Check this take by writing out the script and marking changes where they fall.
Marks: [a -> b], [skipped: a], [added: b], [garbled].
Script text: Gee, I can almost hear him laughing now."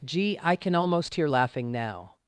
Gee, I can almost hear [skipped: him] laughing now."